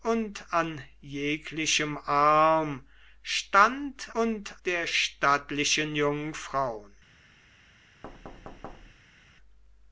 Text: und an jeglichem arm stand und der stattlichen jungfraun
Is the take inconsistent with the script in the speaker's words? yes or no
no